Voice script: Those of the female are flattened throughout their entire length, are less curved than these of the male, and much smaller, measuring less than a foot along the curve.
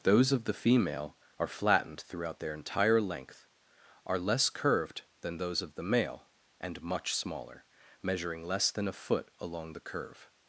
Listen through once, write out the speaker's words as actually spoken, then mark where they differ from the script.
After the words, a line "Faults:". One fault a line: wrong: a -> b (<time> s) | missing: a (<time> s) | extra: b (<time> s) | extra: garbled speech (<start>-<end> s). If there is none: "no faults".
Those of the female are flattened throughout their entire length, are less curved than those of the male, and much smaller, measuring less than a foot along the curve.
Faults:
wrong: these -> those (5.4 s)